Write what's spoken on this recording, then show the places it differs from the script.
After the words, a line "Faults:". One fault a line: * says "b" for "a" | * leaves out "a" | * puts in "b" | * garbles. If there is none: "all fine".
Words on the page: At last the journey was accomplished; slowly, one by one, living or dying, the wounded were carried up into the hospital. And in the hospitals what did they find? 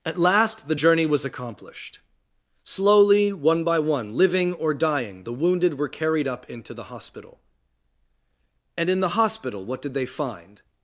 At last the journey was accomplished; slowly, one by one, living or dying, the wounded were carried up into the hospital. And in the hospital what did they find?
Faults:
* says "hospital" for "hospitals"